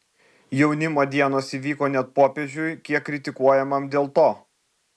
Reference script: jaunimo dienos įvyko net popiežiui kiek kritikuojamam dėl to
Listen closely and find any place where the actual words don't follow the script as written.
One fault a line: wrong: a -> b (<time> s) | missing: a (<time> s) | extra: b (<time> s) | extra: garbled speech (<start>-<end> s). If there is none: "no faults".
no faults